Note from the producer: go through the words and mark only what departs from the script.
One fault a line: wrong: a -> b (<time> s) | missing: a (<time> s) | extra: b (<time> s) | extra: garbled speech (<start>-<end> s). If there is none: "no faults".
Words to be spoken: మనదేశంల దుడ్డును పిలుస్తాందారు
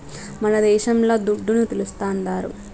no faults